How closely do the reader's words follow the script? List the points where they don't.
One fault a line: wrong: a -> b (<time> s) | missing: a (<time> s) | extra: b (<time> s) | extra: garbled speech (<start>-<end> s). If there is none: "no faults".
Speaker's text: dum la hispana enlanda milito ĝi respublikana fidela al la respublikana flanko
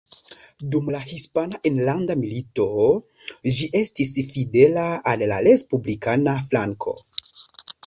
wrong: respublikana -> estis (3.8 s)